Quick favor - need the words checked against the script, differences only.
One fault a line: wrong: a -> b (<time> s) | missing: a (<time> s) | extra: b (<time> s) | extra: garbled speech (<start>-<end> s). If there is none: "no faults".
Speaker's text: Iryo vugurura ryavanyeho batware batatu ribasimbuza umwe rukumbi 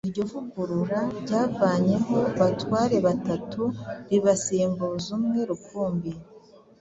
no faults